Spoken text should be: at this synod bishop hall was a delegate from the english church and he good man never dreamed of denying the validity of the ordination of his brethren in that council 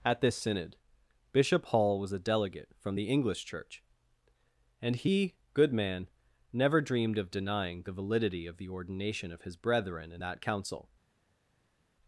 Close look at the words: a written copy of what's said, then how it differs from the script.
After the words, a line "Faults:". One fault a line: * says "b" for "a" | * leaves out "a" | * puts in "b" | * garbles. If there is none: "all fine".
at this synod bishop hall was a delegate from the english church and he good man never dreamed of denying the validity of the ordination of his brethren in that council
Faults:
all fine